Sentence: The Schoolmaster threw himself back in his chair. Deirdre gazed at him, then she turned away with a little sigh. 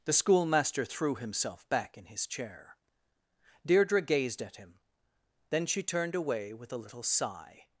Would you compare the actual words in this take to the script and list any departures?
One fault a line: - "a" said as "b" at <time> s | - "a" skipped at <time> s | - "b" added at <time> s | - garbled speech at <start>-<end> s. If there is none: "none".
none